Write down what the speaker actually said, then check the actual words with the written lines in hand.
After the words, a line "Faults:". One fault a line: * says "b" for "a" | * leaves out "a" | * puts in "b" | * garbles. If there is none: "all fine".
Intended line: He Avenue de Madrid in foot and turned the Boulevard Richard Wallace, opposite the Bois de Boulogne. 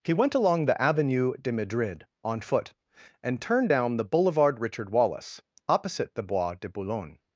He went along the Avenue de Madrid on foot and turned down the Boulevard Richard Wallace, opposite the Bois de Boulogne.
Faults:
* puts in "went along the"
* says "on" for "in"
* puts in "down"